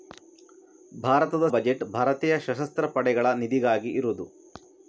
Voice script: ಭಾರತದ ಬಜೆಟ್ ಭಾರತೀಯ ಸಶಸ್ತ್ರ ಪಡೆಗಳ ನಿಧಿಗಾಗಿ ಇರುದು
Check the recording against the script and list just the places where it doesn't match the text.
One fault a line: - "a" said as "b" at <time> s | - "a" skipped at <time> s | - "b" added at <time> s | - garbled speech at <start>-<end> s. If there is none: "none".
none